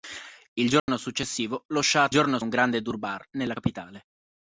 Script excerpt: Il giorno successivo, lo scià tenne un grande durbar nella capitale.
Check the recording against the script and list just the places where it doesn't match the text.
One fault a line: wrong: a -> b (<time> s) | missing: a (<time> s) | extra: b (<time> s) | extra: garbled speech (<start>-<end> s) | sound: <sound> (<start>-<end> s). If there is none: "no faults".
sound: dropout (0.8-0.9 s)
wrong: tenne -> giorno (2.1 s)